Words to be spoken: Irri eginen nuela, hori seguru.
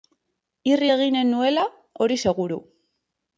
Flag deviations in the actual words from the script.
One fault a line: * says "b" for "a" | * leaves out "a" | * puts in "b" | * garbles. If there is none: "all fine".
all fine